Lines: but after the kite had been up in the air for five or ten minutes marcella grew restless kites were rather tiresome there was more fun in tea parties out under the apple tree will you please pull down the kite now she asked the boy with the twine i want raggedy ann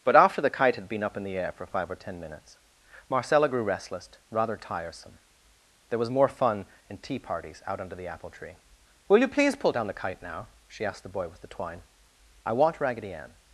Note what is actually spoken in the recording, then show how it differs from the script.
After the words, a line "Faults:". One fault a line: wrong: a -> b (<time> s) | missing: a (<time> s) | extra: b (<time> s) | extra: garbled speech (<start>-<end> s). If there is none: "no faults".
but after the kite had been up in the air for five or ten minutes marcella grew restless rather tiresome there was more fun in tea parties out under the apple tree will you please pull down the kite now she asked the boy with the twine i want raggedy ann
Faults:
missing: kites were (4.1 s)